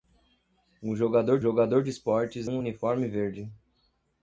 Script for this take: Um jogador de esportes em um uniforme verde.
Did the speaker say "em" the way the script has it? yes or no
no